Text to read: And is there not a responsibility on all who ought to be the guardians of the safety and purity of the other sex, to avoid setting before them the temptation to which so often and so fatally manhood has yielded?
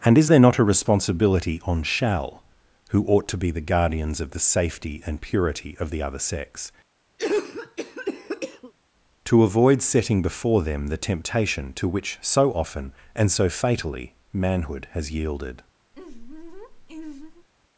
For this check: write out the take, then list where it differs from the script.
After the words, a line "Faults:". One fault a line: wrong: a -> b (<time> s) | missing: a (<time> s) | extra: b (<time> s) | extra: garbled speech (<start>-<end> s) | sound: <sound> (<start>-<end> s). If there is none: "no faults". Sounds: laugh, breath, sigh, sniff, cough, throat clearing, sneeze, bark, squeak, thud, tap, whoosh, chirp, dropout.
And is there not a responsibility on shall who ought to be the guardians of the safety and purity of the other sex, to avoid setting before them the temptation to which so often and so fatally manhood has yielded?
Faults:
wrong: all -> shall (1.8 s)
sound: cough (7.2-8.7 s)
sound: laugh (15.9-17.5 s)